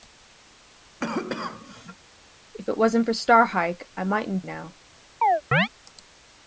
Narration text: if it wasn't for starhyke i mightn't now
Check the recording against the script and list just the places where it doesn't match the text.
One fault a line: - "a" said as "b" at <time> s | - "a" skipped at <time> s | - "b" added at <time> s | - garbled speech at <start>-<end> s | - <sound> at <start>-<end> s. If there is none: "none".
- cough at 1.0-2.0 s
- chirp at 5.2-5.7 s